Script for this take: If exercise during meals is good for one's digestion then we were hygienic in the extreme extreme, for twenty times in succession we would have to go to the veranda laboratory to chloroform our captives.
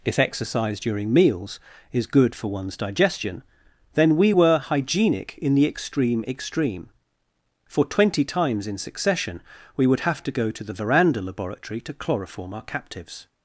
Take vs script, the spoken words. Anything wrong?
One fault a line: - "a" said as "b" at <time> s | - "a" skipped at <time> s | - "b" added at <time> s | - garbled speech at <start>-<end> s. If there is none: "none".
none